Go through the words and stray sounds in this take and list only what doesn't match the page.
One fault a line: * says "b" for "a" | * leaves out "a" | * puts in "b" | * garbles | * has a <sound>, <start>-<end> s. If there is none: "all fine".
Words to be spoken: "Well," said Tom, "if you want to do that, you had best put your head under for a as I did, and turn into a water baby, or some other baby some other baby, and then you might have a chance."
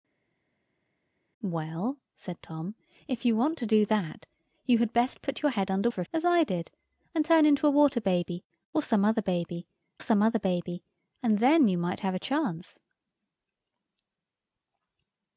all fine